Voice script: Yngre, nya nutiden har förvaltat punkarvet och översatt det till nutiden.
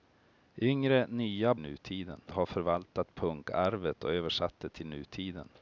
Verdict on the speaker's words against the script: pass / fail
pass